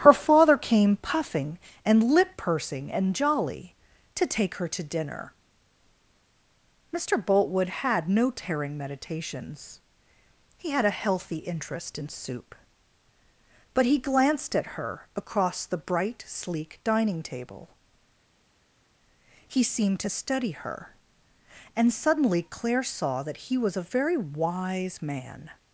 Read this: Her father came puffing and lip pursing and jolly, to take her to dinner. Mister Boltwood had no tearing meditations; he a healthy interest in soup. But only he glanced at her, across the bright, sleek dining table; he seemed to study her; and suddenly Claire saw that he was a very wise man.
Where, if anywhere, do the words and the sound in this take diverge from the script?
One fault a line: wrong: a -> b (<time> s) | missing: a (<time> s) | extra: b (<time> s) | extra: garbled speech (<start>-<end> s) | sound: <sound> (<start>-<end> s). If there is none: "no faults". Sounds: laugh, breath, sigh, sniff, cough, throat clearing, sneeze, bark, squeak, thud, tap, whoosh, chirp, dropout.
extra: had (10.7 s)
missing: only (13.8 s)